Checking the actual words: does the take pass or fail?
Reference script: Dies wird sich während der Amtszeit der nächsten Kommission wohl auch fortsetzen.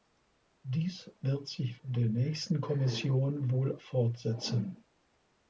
fail